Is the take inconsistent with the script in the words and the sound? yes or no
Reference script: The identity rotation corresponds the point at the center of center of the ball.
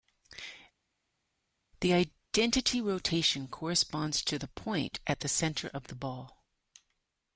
yes